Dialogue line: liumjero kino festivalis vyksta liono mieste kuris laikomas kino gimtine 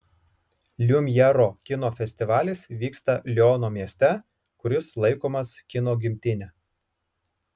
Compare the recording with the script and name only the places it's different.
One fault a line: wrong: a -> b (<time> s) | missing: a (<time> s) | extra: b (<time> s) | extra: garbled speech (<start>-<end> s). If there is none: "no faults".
no faults